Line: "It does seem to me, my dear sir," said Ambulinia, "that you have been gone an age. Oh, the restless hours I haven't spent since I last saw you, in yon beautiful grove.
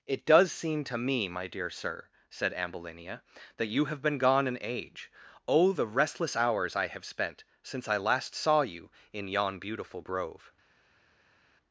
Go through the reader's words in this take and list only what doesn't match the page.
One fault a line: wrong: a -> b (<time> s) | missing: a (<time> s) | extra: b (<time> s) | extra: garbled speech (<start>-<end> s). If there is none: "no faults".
wrong: haven't -> have (6.9 s)